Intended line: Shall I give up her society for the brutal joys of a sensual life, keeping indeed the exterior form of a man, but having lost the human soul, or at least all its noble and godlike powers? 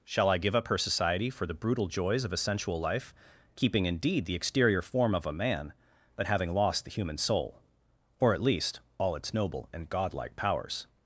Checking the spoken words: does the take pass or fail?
pass